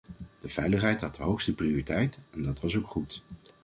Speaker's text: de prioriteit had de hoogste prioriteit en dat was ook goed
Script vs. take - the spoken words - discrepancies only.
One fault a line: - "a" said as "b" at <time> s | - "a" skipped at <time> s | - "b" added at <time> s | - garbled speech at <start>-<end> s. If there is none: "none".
- "prioriteit" said as "veiligheid" at 0.5 s